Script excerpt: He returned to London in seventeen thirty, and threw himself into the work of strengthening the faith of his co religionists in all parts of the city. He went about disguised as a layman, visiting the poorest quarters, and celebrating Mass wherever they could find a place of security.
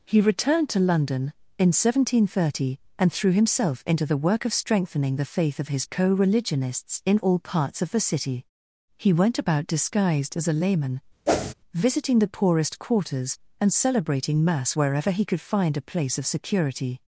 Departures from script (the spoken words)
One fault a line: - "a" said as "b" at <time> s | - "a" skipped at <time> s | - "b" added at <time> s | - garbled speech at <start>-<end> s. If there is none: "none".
- "they" said as "he" at 15.1 s